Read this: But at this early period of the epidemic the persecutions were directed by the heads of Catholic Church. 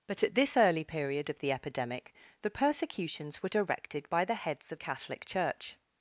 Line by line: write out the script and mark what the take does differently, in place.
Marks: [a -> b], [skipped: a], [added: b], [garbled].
But at this early period of the epidemic the persecutions were directed by the heads of Catholic Church.